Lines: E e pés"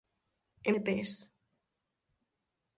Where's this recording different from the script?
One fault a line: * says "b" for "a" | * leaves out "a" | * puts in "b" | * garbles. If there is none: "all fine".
all fine